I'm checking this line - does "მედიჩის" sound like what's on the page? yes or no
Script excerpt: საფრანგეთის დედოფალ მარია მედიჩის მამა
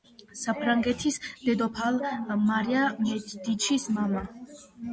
yes